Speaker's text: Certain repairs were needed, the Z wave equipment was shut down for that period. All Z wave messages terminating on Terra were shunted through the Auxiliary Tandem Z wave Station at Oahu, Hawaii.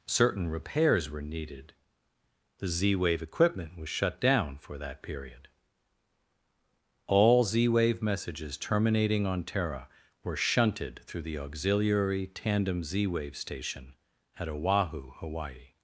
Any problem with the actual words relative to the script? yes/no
no